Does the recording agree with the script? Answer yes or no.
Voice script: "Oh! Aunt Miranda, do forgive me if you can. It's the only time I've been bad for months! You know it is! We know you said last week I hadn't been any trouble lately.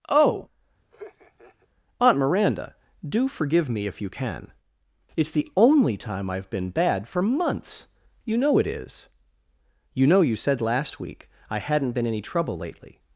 no